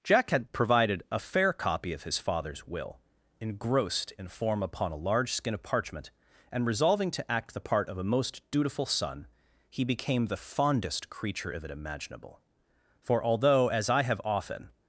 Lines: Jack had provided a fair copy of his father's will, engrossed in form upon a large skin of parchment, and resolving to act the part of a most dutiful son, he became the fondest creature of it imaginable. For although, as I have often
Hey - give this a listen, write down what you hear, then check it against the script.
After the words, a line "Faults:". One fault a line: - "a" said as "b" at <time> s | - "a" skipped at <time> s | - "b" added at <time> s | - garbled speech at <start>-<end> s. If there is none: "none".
Jack had provided a fair copy of his father's will, engrossed in form upon a large skin of parchment, and resolving to act the part of a most dutiful son, he became the fondest creature of it imaginable. For although, as I have often
Faults:
none